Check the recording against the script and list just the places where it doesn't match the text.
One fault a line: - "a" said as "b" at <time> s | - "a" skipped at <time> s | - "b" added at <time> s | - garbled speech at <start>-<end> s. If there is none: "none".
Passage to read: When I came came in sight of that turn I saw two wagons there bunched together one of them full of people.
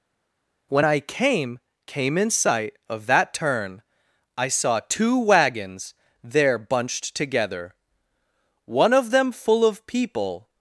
none